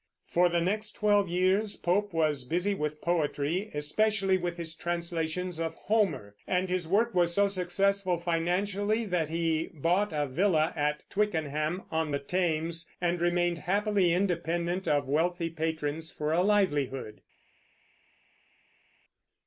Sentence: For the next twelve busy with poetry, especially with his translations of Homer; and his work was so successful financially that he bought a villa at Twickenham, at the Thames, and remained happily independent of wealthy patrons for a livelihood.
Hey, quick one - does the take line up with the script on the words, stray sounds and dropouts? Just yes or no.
no